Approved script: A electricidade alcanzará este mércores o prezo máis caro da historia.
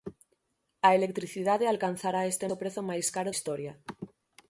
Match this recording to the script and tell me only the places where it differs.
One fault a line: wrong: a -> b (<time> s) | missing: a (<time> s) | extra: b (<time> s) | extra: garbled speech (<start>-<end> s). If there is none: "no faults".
missing: mércores (2.5 s)
missing: da (3.3 s)